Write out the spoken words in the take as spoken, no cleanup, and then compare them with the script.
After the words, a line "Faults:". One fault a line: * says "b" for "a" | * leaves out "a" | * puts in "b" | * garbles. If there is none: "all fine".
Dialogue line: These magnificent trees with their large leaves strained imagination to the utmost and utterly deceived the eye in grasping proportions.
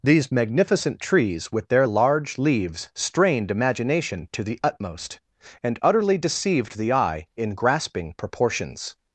These magnificent trees with their large leaves strained imagination to the utmost and utterly deceived the eye in grasping proportions.
Faults:
all fine